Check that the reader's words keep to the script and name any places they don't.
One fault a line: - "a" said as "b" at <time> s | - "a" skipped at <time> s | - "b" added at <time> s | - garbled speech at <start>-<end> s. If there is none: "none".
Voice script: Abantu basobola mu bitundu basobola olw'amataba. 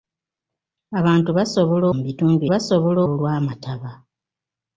none